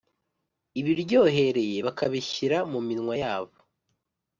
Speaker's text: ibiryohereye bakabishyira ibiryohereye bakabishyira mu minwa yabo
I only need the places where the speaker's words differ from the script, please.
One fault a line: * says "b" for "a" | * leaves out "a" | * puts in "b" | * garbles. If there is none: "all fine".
* leaves out "ibiryohereye bakabishyira"